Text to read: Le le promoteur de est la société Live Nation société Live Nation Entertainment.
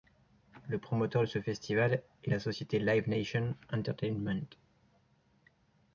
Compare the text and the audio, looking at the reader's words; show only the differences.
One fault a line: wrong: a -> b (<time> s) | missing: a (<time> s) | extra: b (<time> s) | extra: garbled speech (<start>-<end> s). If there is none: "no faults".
missing: le (0.8 s)
extra: ce festival (1.3 s)
missing: société Live Nation (3.6 s)